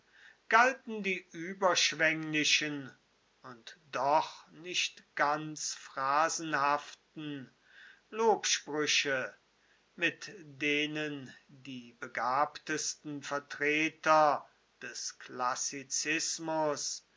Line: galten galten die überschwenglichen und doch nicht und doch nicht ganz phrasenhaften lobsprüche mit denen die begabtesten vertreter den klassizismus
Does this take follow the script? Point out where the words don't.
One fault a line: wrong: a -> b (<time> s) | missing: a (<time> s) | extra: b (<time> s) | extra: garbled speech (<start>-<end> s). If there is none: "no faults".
missing: galten (1.0 s)
missing: und doch nicht (5.0 s)
wrong: den -> des (14.8 s)